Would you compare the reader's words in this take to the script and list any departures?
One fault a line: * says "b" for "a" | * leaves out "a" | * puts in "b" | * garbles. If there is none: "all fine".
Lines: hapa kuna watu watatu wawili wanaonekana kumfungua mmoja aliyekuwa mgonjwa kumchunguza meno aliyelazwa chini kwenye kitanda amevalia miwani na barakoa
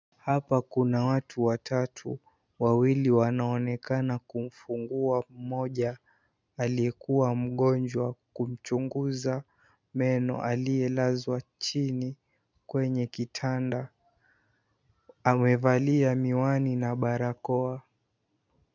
all fine